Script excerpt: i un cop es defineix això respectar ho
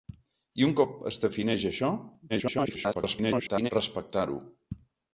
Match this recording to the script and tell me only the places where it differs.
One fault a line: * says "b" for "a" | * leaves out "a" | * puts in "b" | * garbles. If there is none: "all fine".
* garbles